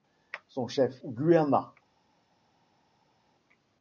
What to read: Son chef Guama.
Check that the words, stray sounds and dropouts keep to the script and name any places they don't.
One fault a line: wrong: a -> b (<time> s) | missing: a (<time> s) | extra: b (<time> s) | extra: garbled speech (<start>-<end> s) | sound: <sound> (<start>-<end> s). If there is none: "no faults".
no faults